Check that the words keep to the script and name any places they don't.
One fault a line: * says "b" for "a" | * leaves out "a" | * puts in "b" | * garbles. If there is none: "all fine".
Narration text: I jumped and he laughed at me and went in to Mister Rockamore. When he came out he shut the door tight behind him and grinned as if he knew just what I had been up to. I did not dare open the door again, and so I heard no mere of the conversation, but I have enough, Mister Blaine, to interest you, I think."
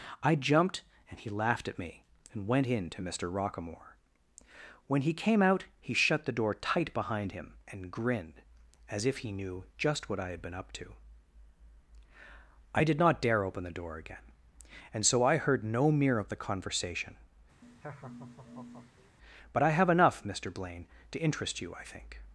all fine